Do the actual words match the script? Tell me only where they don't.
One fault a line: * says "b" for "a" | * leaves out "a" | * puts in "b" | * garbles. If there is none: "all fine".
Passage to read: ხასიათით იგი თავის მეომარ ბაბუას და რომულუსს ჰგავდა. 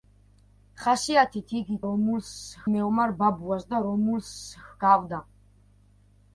* says "რომულუსს" for "თავის"